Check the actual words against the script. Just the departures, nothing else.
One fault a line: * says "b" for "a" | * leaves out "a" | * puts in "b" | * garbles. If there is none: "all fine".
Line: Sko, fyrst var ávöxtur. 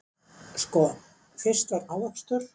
all fine